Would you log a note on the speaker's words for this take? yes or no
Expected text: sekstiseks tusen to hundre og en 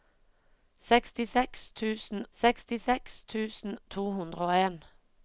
yes